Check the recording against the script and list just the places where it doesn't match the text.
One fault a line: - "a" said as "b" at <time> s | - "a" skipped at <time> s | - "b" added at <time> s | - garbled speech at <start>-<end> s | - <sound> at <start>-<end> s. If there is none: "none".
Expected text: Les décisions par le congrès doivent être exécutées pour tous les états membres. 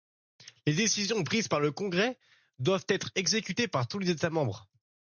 - "prises" added at 1.2 s
- "pour" said as "par" at 3.7 s